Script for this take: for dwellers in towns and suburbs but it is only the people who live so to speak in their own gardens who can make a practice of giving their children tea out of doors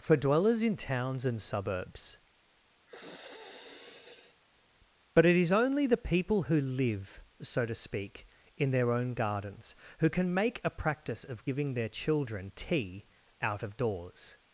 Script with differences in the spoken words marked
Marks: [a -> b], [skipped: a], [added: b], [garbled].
for dwellers in towns and suburbs but it is only the people who live so to speak in their own gardens who can make a practice of giving their children tea out of doors